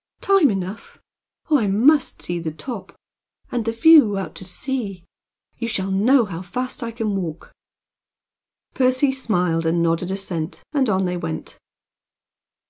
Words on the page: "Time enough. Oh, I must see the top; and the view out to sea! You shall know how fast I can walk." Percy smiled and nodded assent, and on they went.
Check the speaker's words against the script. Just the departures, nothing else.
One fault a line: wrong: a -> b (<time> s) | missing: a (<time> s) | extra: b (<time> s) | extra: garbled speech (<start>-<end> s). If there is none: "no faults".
no faults